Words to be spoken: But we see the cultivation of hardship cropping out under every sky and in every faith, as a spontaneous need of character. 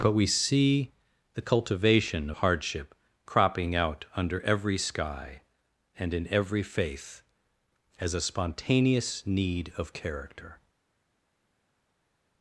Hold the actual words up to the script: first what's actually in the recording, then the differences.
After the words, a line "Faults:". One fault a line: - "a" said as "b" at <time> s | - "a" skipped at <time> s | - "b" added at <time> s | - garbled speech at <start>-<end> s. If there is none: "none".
But we see the cultivation hardship cropping out under every sky and in every faith, as a spontaneous need of character.
Faults:
- "of" skipped at 2.3 s